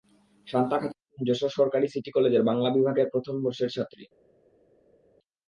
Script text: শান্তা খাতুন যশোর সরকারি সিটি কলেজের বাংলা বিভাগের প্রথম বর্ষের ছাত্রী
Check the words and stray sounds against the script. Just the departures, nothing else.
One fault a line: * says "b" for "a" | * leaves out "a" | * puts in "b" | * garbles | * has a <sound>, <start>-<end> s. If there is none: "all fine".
all fine